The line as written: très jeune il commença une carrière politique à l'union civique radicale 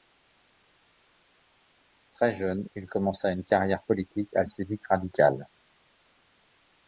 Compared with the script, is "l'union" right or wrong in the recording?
wrong